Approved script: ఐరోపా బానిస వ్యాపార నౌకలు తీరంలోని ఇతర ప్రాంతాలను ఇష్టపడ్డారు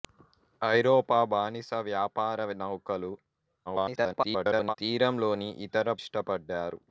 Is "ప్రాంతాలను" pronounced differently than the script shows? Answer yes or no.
yes